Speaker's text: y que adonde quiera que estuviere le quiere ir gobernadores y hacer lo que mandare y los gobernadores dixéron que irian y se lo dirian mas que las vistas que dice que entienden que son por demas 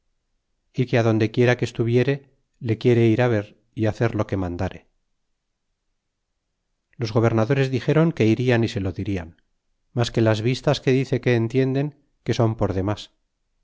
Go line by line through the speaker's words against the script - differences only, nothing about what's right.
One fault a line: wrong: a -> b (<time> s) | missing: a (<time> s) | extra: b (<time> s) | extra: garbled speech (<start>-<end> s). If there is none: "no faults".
wrong: gobernadores -> ver (3.4 s)